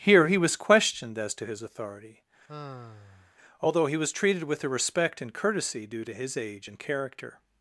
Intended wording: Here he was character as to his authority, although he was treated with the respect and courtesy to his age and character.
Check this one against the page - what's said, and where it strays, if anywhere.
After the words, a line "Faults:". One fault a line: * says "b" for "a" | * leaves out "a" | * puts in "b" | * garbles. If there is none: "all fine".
Here he was questioned as to his authority, although he was treated with the respect and courtesy due to his age and character.
Faults:
* says "questioned" for "character"
* puts in "due"